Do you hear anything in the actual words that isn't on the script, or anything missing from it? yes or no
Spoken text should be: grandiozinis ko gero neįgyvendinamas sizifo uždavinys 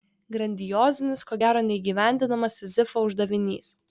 no